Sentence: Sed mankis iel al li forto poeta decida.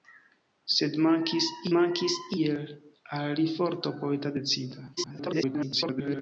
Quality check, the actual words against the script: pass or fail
fail